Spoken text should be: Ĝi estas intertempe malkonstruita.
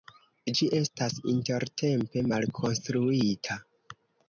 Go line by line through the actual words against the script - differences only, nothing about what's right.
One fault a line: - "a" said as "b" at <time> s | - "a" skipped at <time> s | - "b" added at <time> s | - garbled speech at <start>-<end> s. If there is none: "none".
none